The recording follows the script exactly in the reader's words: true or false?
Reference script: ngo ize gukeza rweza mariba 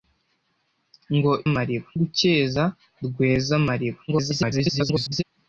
false